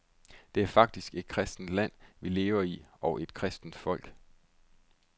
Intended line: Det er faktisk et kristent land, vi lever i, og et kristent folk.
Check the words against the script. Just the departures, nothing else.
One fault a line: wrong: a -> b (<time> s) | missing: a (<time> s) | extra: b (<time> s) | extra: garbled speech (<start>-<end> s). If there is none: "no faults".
no faults